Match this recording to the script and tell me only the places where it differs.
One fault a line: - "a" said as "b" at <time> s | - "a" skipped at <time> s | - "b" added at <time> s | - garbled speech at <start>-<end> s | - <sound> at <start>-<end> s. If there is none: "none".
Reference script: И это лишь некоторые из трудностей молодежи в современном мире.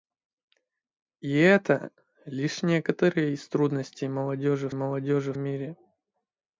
- "современном" said as "молодежи" at 4.7 s